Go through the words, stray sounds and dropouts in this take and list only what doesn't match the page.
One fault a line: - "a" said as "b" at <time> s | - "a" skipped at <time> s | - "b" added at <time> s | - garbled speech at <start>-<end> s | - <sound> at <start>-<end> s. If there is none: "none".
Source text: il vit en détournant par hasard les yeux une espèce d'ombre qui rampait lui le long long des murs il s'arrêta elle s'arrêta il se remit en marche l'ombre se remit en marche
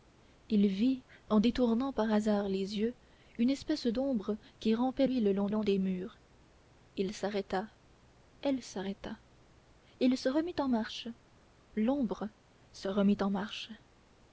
none